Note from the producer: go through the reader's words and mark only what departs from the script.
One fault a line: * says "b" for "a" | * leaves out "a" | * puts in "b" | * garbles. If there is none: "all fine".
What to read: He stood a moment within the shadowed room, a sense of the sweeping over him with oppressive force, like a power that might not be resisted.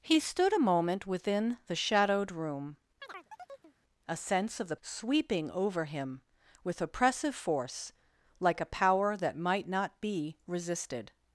all fine